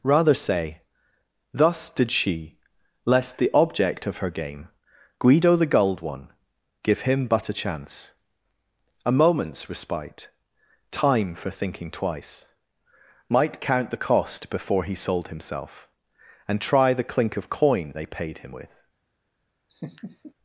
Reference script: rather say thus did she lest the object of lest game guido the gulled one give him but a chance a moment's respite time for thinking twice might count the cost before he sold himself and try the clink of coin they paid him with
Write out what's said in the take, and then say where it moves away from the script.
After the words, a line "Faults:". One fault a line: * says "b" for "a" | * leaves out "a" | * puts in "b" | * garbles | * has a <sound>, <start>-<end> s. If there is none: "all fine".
rather say thus did she lest the object of her game guido the gulled one give him but a chance a moment's respite time for thinking twice might count the cost before he sold himself and try the clink of coin they paid him with
Faults:
* says "her" for "lest"
* has a laugh, 19.7-20.3 s